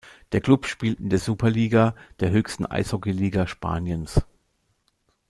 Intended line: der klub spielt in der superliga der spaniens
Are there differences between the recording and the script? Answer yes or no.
yes